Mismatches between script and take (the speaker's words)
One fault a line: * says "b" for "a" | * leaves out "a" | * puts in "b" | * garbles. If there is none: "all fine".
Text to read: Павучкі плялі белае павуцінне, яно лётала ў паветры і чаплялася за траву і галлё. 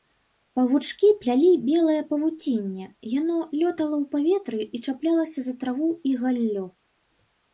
all fine